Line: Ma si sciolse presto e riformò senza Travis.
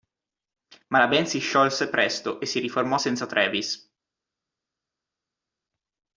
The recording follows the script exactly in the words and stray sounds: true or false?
false